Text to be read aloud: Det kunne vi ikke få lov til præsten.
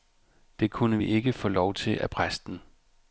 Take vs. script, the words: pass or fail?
fail